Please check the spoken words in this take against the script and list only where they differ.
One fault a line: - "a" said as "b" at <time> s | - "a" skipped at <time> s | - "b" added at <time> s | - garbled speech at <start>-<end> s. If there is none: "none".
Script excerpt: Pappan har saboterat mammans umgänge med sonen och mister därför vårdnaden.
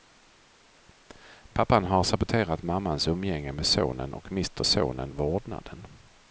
- "därför" said as "sonen" at 4.7 s